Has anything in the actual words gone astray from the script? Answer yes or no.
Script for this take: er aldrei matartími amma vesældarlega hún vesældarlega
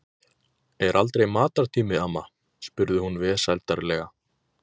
yes